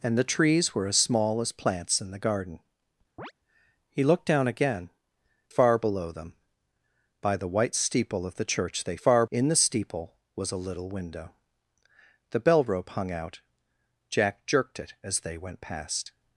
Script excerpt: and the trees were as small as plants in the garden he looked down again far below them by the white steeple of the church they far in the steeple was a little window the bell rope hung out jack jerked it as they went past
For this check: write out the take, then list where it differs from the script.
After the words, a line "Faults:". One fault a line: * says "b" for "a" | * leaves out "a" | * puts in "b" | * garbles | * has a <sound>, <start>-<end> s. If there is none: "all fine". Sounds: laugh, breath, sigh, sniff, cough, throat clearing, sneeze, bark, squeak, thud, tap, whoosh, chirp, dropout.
and the trees were as small as plants in the garden he looked down again far below them by the white steeple of the church they far in the steeple was a little window the bell rope hung out jack jerked it as they went past
Faults:
* has a chirp, 3.2-3.3 s